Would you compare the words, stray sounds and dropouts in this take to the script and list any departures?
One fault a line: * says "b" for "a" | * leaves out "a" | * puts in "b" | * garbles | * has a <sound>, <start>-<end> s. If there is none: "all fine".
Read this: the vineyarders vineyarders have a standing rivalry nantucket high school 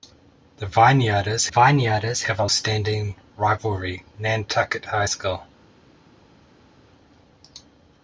all fine